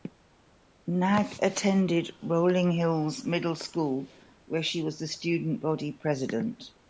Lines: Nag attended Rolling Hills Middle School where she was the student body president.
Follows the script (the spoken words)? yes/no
yes